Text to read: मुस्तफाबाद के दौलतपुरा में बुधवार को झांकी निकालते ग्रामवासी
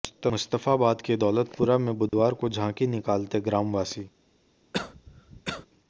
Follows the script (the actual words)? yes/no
yes